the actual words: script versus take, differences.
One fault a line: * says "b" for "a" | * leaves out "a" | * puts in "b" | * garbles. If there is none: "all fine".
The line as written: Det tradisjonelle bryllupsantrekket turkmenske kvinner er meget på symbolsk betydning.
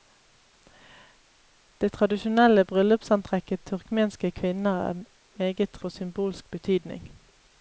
all fine